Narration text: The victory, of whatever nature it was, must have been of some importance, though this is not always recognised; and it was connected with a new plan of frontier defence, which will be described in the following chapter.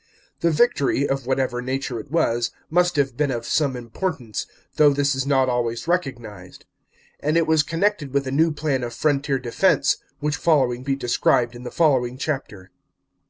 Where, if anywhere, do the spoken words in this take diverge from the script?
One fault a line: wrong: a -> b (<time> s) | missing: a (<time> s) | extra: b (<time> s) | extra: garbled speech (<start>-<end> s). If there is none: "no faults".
wrong: will -> following (10.4 s)